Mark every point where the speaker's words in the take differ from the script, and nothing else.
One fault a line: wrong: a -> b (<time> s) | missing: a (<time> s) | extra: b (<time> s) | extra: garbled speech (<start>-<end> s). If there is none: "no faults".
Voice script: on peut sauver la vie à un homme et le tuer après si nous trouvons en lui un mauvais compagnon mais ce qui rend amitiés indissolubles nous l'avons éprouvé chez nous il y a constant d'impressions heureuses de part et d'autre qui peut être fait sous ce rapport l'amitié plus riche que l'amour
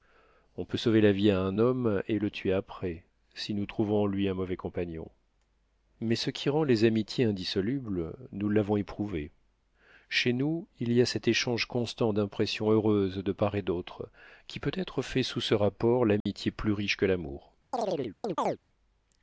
extra: les (6.6 s)
extra: cet échange (11.1 s)